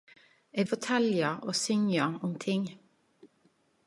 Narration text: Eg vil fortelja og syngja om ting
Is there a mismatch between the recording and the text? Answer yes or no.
yes